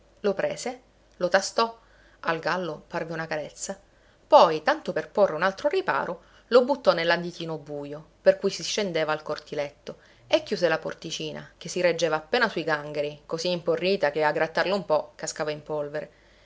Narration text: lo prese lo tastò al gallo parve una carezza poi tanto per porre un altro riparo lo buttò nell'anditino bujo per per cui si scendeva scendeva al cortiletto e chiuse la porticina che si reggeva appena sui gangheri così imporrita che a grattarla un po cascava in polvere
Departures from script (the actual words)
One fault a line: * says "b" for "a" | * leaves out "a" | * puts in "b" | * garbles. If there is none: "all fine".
* leaves out "per"
* leaves out "scendeva"